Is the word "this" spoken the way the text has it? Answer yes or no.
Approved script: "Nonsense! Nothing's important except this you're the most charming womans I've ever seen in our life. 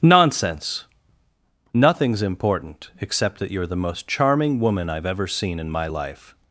no